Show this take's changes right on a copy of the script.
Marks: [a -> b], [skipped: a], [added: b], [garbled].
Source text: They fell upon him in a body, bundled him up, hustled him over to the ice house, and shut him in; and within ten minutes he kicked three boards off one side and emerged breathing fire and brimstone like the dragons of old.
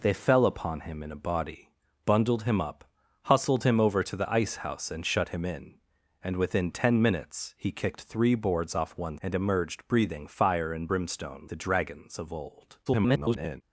They fell upon him in a body, bundled him up, hustled him over to the ice house, and shut him in; and within ten minutes he kicked three boards off one [skipped: side] and emerged breathing fire and brimstone [skipped: like] the dragons of old. [garbled]